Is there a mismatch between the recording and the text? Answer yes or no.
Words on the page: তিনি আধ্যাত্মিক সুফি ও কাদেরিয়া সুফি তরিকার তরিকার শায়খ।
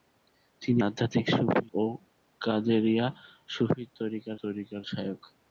no